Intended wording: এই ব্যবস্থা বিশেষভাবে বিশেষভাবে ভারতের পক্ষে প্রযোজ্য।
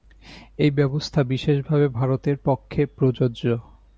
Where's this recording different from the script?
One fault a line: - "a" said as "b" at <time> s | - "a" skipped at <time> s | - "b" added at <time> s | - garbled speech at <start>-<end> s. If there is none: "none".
- "বিশেষভাবে" skipped at 1.9 s